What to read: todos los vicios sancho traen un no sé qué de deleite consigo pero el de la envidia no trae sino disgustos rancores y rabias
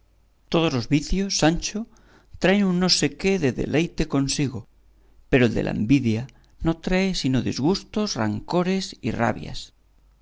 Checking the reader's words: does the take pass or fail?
pass